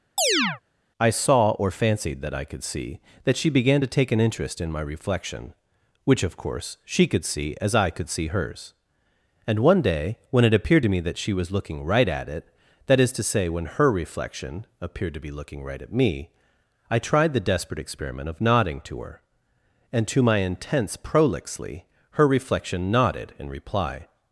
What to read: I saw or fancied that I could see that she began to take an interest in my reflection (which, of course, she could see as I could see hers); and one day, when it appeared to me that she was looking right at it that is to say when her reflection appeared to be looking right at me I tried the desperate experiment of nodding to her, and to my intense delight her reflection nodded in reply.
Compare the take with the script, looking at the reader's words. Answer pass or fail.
fail